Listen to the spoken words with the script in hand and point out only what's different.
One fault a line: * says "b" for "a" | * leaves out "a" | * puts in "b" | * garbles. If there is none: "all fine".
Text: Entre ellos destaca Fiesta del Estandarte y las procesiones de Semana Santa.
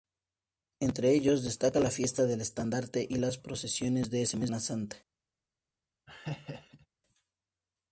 * puts in "la"